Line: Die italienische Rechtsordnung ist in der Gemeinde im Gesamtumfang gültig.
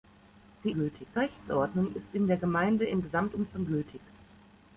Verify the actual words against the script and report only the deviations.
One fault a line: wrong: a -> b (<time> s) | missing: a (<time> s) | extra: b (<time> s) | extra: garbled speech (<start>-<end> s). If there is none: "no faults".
wrong: italienische -> gültig (0.7 s)